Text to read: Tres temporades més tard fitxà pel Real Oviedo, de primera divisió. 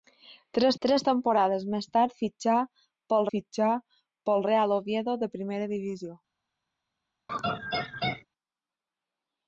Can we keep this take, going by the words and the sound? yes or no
no